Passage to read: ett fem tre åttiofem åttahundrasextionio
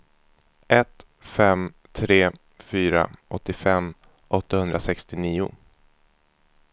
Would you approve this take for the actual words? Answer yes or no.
no